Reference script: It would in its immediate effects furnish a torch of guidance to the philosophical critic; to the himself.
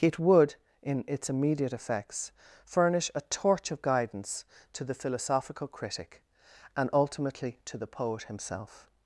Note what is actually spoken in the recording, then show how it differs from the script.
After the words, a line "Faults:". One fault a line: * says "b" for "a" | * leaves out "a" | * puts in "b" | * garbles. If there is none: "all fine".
It would in its immediate effects furnish a torch of guidance to the philosophical critic; and ultimately to the poet himself.
Faults:
* puts in "and ultimately"
* puts in "poet"